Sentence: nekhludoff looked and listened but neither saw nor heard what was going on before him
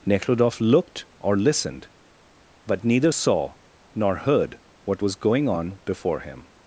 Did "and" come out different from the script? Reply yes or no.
yes